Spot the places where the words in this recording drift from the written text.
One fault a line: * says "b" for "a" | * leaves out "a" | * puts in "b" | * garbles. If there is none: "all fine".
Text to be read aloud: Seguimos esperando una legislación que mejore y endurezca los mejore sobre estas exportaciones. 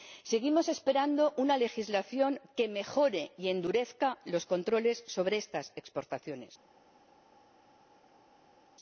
* says "controles" for "mejore"